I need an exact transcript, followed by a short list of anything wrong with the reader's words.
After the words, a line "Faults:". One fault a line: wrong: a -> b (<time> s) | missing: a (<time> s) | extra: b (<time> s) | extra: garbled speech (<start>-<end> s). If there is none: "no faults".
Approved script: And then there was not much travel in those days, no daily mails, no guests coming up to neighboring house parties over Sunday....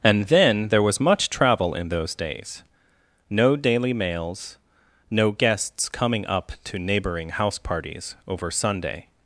And then there was much travel in those days, no daily mails, no guests coming up to neighboring house parties over Sunday....
Faults:
missing: not (1.0 s)